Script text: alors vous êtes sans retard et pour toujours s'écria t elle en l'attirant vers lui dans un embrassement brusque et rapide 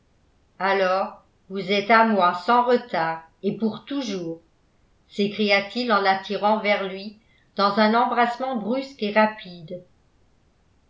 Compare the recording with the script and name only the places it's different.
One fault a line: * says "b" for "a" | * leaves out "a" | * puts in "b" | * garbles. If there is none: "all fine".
* puts in "à moi"
* says "il" for "elle"